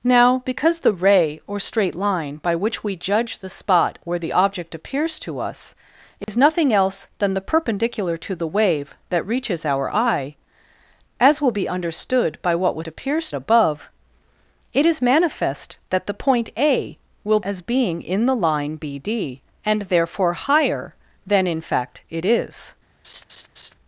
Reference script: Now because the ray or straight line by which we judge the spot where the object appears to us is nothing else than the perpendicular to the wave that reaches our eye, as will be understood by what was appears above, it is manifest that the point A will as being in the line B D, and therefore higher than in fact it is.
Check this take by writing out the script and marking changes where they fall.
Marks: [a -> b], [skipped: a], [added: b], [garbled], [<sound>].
Now because the ray or straight line by which we judge the spot where the object appears to us is [dropout] nothing else than the perpendicular to the wave that reaches our eye, as will be understood by what was appears above, it is manifest that the point A will as being in the line B D, and therefore higher than in fact it is. [laugh]